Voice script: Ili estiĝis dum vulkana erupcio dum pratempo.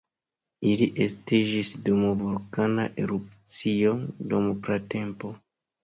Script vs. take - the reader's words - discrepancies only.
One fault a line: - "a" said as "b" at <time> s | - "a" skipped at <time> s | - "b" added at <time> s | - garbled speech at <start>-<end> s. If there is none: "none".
none